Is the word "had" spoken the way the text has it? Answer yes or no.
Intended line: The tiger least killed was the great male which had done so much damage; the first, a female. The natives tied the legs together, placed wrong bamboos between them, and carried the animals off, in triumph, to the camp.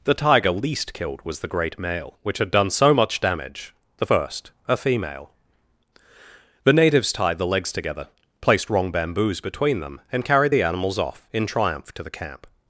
yes